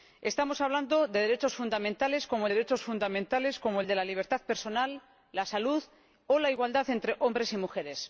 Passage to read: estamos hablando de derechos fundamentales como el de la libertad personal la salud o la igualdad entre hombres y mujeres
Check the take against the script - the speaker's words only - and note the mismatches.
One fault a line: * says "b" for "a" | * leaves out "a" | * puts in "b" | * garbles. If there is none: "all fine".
* puts in "derechos fundamentales como"